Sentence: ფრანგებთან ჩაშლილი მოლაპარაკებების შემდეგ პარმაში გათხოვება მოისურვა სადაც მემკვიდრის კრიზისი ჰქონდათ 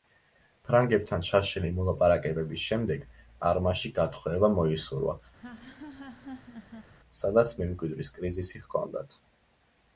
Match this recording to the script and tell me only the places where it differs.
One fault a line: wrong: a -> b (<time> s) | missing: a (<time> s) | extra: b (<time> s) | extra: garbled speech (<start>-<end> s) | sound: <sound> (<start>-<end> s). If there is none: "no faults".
sound: laugh (5.4-6.9 s)